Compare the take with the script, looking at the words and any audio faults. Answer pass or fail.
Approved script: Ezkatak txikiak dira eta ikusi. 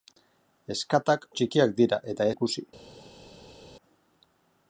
pass